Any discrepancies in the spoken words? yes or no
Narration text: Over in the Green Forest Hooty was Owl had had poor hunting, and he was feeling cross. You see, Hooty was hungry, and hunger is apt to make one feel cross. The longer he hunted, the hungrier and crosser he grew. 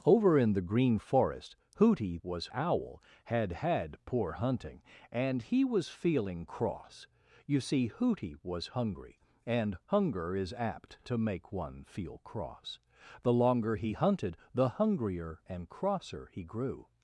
no